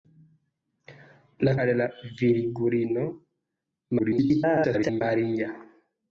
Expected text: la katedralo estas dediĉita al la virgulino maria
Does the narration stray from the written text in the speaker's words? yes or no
yes